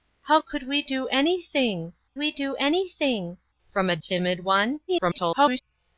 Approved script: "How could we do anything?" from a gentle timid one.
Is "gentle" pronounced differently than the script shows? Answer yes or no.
yes